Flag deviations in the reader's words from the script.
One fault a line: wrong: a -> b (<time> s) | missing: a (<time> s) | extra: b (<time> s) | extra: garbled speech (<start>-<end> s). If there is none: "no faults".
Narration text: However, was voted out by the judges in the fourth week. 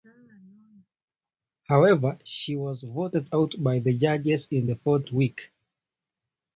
extra: she (2.2 s)